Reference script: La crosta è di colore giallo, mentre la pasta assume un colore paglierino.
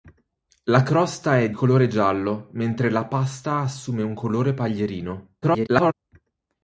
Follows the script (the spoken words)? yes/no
no